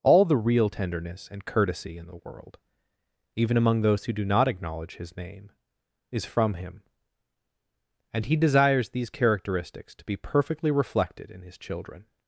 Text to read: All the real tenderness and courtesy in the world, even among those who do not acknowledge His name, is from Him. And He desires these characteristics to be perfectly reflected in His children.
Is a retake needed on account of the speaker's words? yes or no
no